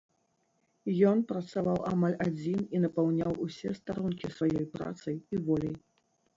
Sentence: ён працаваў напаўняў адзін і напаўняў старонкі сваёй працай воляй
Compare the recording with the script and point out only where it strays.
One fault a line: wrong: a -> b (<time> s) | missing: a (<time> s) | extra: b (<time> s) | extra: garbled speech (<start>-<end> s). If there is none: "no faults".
wrong: напаўняў -> амаль (1.9 s)
extra: усе (3.5 s)
extra: і (5.3 s)